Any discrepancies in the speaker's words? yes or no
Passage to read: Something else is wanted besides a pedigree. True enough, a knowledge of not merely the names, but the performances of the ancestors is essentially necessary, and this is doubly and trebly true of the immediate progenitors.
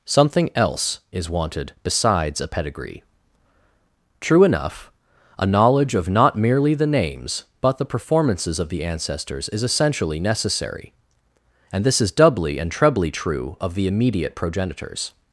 no